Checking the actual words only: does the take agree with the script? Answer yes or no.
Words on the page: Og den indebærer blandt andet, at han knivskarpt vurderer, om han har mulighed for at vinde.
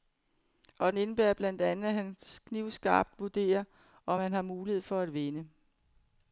yes